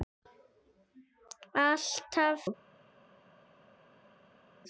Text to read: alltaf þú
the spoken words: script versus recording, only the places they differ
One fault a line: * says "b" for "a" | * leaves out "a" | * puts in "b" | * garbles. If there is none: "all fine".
all fine